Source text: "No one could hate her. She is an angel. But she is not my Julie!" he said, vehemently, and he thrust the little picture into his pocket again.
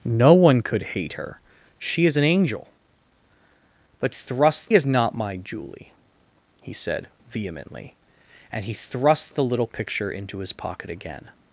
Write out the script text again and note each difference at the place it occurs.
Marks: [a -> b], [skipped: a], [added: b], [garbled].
"No one could hate her. She is an angel. But [she -> thrust] is not my Julie!" he said, vehemently, and he thrust the little picture into his pocket again.